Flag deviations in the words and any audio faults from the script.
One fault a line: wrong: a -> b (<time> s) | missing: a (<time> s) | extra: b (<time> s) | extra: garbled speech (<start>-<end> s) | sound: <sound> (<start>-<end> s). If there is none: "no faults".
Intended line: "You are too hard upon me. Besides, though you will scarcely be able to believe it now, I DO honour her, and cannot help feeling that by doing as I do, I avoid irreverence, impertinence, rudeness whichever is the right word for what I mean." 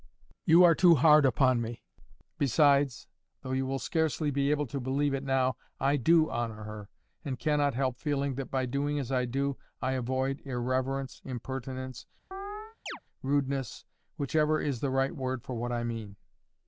sound: chirp (12.3-13.0 s)